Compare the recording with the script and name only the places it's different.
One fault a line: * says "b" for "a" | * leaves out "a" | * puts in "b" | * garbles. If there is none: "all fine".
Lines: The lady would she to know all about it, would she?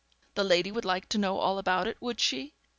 * says "like" for "she"